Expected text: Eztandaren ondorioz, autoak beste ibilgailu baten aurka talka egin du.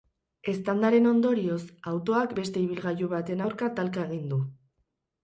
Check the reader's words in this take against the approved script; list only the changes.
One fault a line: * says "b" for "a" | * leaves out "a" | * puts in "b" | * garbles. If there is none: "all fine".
all fine